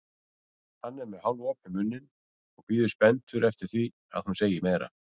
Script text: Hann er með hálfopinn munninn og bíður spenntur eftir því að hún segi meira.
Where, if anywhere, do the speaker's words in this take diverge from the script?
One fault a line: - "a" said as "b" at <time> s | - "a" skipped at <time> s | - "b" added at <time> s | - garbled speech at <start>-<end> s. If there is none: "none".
none